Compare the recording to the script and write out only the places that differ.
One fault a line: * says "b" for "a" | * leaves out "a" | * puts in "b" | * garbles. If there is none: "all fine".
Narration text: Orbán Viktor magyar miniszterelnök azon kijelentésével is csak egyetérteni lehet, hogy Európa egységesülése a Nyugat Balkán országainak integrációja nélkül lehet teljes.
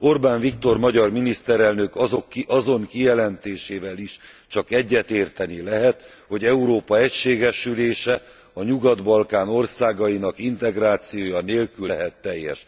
all fine